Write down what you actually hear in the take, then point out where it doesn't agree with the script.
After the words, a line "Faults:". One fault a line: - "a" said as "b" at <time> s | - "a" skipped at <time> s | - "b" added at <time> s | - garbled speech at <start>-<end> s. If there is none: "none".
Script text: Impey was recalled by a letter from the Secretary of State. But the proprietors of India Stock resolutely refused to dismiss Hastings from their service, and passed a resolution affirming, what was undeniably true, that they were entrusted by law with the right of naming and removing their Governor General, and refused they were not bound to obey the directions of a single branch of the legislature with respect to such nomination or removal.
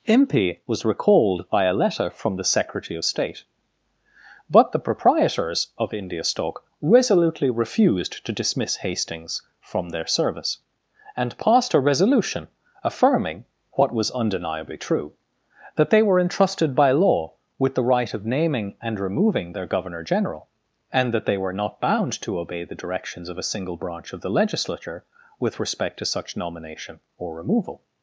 Impey was recalled by a letter from the Secretary of State. But the proprietors of India Stock resolutely refused to dismiss Hastings from their service, and passed a resolution affirming, what was undeniably true, that they were entrusted by law with the right of naming and removing their Governor General, and that they were not bound to obey the directions of a single branch of the legislature with respect to such nomination or removal.
Faults:
- "refused" said as "that" at 21.1 s